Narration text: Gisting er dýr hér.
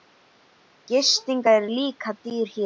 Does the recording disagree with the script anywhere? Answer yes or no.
yes